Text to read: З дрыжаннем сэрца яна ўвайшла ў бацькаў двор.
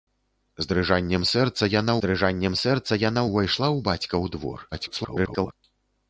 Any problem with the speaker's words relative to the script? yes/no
yes